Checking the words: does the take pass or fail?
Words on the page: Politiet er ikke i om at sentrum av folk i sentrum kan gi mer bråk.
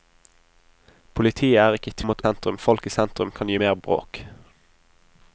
pass